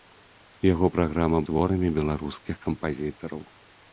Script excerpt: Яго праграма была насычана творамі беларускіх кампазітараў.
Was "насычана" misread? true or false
true